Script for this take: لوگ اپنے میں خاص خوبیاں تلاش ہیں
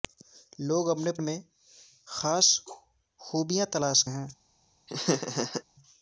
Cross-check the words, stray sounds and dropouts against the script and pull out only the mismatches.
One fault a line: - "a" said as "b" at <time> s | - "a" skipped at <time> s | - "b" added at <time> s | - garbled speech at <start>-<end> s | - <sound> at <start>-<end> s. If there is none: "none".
- laugh at 4.9-5.6 s